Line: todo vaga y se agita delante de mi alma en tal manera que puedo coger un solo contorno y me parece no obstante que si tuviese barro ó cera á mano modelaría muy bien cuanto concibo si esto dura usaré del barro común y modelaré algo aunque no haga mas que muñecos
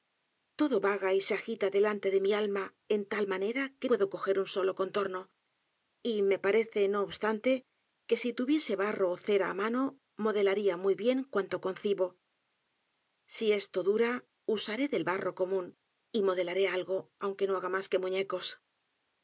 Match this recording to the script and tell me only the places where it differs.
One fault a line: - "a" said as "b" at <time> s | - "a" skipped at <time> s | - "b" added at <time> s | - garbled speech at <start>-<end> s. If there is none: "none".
none